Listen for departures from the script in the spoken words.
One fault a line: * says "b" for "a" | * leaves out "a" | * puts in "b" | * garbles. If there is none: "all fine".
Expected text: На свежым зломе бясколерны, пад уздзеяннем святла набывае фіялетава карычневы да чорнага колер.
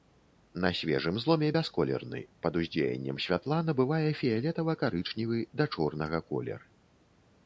all fine